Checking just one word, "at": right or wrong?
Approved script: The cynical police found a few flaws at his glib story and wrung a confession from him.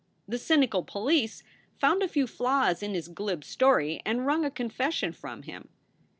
wrong